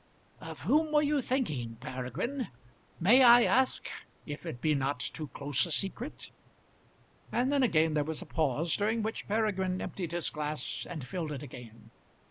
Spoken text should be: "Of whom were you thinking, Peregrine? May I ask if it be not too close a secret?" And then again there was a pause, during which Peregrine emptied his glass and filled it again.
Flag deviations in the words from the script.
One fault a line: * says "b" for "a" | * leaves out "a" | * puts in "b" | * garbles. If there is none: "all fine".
all fine